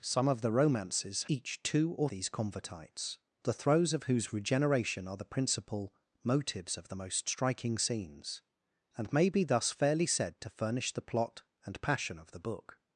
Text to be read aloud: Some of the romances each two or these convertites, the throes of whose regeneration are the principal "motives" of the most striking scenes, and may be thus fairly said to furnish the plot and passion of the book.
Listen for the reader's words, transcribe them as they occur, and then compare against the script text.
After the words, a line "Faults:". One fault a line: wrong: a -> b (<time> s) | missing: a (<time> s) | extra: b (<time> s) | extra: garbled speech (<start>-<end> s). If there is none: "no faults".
Some of the romances each two or these convertites, the throes of whose regeneration are the principal "motives" of the most striking scenes, and may be thus fairly said to furnish the plot and passion of the book.
Faults:
no faults